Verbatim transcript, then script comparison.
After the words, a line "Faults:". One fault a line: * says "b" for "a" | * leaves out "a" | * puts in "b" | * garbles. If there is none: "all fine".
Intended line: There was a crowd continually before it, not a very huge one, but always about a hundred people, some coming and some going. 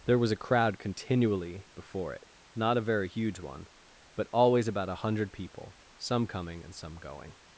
There was a crowd continually before it, not a very huge one, but always about a hundred people, some coming and some going.
Faults:
all fine